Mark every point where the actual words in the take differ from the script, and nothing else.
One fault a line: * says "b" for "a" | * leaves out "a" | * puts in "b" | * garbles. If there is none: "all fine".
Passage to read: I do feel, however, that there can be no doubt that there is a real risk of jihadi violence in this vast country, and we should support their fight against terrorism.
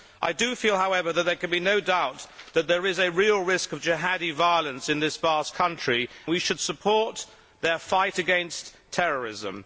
* leaves out "and"